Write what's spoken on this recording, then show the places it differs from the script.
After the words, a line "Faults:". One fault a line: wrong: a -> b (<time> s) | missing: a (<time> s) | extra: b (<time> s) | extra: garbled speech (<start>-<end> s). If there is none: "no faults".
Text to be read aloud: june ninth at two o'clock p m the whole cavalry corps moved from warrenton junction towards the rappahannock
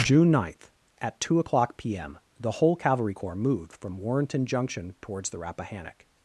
june ninth at two o'clock p m the whole cavalry corps moved from warrenton junction towards the rappahannock
Faults:
no faults